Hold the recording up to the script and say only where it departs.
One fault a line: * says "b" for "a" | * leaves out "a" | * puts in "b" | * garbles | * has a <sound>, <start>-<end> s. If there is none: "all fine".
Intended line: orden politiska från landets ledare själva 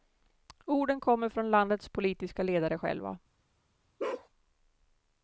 * says "kommer" for "politiska"
* puts in "politiska"
* has a bark, 4.0-4.3 s